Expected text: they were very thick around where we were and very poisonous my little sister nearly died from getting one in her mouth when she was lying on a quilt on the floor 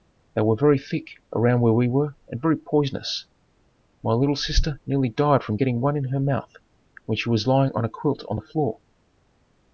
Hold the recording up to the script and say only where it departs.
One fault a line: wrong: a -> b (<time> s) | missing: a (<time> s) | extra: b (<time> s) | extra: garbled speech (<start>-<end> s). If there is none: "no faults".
no faults